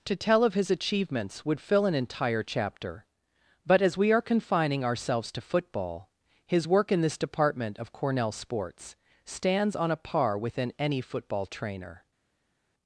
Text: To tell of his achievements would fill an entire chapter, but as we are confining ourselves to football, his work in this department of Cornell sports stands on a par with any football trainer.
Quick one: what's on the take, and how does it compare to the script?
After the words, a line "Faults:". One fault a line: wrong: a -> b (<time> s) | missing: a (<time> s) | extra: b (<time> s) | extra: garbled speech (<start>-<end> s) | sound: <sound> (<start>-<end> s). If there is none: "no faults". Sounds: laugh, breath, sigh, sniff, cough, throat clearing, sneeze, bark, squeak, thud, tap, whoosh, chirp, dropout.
To tell of his achievements would fill an entire chapter, but as we are confining ourselves to football, his work in this department of Cornell sports stands on a par within any football trainer.
Faults:
wrong: with -> within (10.4 s)